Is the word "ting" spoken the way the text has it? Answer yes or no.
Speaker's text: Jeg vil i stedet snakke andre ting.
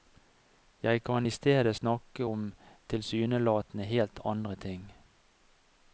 yes